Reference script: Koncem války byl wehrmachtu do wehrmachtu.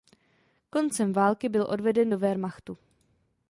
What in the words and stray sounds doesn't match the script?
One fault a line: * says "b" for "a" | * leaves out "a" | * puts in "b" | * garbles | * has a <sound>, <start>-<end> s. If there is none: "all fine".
* says "odveden" for "wehrmachtu"